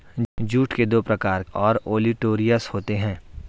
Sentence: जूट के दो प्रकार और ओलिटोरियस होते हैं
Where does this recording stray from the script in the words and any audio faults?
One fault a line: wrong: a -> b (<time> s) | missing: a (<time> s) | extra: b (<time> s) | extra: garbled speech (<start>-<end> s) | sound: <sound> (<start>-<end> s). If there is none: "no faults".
no faults